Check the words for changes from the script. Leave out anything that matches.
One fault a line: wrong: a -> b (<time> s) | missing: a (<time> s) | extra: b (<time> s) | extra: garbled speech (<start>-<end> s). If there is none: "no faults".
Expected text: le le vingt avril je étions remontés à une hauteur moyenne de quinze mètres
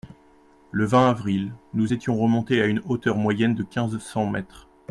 missing: le (0.8 s)
wrong: je -> nous (1.8 s)
extra: cents (4.0 s)